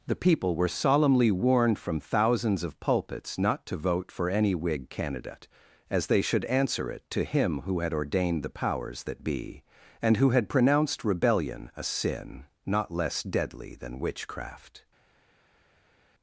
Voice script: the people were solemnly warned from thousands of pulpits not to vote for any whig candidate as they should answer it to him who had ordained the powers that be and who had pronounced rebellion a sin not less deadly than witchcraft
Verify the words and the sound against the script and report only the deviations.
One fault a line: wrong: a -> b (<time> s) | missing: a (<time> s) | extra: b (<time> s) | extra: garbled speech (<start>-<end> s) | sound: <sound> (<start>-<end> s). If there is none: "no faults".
no faults